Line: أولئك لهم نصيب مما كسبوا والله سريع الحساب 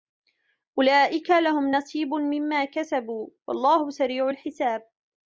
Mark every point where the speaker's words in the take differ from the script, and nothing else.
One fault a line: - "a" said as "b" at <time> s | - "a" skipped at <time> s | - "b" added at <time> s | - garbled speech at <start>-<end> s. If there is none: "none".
none